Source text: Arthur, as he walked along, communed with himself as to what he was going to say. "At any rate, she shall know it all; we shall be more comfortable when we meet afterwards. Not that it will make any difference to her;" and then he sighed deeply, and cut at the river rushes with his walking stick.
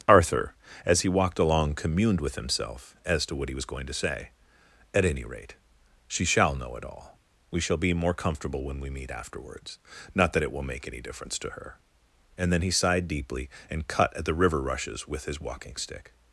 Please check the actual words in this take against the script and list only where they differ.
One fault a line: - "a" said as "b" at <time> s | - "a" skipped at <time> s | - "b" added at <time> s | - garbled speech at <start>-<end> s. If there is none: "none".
none